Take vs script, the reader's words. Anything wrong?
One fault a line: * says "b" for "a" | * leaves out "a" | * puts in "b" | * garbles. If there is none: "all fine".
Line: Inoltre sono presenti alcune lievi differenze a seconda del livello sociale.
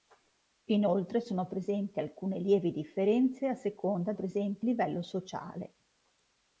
* says "presenti" for "del"